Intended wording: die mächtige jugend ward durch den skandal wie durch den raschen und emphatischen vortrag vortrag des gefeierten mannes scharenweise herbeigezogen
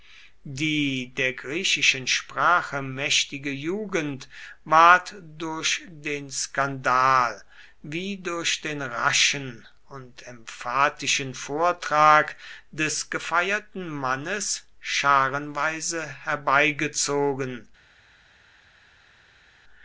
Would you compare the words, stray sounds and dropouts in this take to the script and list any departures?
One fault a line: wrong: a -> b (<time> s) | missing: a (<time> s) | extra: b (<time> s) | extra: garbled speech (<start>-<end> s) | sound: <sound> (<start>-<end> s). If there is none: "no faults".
extra: der griechischen sprache (1.1 s)
missing: vortrag (12.3 s)